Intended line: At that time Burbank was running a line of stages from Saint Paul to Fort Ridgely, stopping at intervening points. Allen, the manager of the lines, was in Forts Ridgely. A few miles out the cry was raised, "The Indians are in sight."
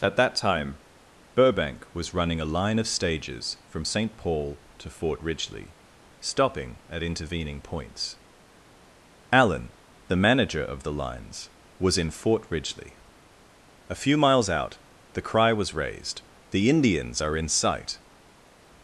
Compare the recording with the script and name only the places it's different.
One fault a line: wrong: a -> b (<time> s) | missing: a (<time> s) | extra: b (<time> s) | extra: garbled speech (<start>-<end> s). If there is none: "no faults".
wrong: Forts -> Fort (12.1 s)